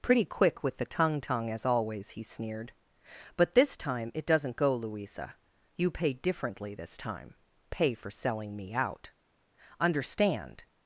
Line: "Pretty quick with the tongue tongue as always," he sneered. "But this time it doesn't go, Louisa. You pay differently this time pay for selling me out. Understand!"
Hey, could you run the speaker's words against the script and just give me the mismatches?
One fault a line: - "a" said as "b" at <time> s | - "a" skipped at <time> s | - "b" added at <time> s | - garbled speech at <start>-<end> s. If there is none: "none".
none